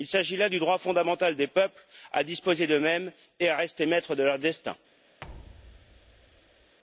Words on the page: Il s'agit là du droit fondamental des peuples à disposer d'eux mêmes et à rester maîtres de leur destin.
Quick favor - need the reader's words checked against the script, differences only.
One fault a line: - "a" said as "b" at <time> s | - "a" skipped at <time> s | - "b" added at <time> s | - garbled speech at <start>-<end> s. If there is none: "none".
none